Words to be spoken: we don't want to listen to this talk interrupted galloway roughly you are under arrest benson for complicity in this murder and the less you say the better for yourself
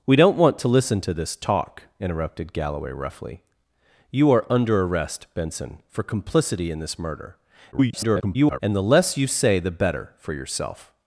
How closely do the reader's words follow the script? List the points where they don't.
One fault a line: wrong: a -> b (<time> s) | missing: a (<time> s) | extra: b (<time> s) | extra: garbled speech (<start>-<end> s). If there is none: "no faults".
extra: garbled speech (7.7-8.6 s)